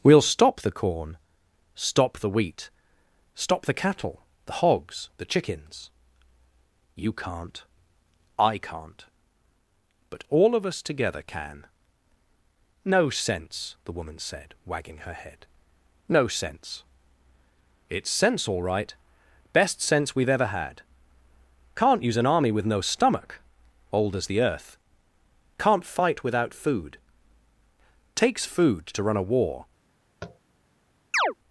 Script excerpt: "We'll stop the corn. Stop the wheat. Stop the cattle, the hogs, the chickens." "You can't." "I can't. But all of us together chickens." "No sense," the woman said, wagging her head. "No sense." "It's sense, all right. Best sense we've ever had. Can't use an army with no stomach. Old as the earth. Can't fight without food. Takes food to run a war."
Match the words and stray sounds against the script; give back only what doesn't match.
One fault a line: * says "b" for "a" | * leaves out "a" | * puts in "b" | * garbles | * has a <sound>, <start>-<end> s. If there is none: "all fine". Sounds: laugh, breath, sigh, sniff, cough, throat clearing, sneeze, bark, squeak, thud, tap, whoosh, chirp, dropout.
* says "can" for "chickens"
* has a tap, 30.2-30.4 s
* has a chirp, 31.1-31.3 s